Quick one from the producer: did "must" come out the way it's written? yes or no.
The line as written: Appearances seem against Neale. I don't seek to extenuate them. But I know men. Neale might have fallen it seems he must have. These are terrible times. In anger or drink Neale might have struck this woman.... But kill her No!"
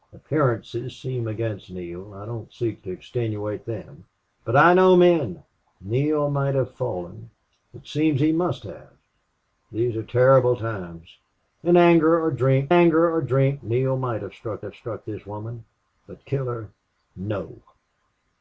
yes